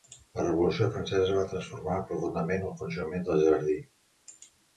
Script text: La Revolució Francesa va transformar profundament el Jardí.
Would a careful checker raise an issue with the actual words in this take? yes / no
yes